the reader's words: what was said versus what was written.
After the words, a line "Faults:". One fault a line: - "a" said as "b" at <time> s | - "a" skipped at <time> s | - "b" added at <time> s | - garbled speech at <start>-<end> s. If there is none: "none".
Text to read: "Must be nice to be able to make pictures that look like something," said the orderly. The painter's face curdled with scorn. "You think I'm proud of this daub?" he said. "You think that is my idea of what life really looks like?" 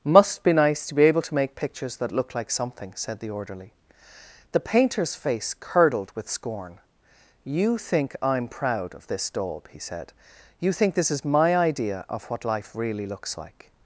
"Must be nice to be able to make pictures that look like something," said the orderly. The painter's face curdled with scorn. "You think I'm proud of this daub?" he said. "You think this is my idea of what life really looks like?"
Faults:
- "that" said as "this" at 10.9 s